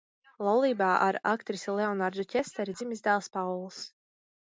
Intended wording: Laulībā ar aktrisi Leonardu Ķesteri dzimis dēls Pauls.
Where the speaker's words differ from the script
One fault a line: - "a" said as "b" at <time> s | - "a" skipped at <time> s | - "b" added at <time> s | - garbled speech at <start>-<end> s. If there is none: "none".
none